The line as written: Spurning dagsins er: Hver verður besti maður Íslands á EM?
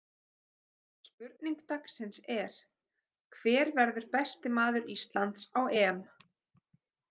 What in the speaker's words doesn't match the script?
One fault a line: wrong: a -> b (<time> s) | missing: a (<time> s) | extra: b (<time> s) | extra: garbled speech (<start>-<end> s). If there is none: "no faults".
no faults